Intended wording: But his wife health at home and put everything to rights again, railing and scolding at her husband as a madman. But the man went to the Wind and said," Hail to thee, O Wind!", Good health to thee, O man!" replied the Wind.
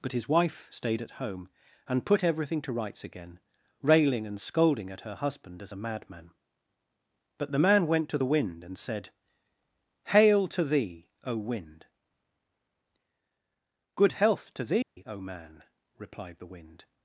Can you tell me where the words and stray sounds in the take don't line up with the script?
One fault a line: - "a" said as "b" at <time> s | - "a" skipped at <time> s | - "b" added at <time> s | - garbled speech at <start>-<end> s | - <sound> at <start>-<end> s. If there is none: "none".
- "health" said as "stayed" at 0.7 s
- dropout at 14.8-15.0 s